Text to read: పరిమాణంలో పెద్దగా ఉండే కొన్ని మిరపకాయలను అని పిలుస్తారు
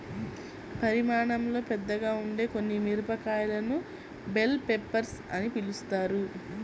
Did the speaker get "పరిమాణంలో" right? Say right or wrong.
right